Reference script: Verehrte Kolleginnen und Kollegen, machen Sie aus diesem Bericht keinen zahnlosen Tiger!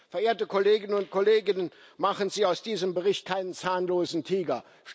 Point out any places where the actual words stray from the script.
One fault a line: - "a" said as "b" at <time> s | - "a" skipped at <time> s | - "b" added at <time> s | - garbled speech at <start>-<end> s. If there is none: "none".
none